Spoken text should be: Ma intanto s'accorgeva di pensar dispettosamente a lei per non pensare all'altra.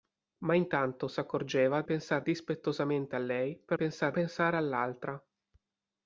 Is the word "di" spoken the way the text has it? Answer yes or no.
no